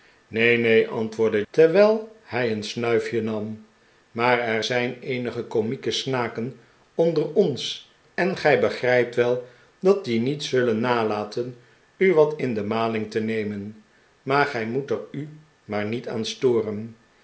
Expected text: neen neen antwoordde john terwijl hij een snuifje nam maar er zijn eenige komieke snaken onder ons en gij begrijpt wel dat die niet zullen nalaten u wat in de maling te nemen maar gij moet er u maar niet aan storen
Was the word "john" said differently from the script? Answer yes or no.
yes